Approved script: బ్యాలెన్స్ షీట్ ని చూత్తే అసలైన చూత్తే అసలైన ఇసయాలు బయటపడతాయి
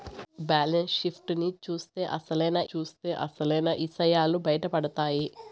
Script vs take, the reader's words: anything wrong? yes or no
no